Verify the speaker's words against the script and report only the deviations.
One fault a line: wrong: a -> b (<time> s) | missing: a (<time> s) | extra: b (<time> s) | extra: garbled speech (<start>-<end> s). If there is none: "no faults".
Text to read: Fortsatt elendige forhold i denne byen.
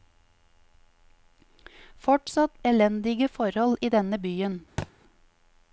no faults